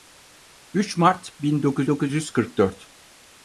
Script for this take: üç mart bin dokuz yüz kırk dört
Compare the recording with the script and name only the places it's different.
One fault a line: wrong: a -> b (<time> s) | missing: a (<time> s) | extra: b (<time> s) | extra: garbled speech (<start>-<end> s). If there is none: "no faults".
extra: dokuz (1.9 s)